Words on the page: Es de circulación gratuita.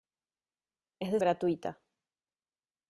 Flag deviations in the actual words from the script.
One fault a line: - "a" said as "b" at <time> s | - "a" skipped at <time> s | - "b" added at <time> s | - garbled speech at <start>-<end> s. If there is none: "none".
- "circulación" skipped at 1.2 s